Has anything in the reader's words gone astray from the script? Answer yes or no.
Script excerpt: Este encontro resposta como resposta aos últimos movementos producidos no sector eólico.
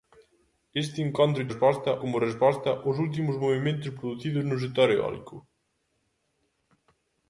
no